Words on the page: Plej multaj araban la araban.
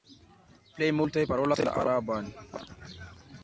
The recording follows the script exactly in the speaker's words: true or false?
false